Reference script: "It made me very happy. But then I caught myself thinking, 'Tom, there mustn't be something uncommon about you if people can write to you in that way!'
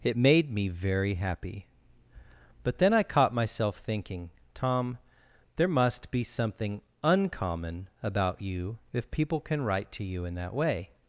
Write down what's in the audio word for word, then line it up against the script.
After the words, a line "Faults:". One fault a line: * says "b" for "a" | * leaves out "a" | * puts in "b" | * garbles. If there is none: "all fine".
"It made me very happy. But then I caught myself thinking, 'Tom, there must be something uncommon about you if people can write to you in that way!'
Faults:
* says "must" for "mustn't"